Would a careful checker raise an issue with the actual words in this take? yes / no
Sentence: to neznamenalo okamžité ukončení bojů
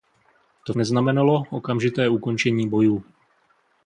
no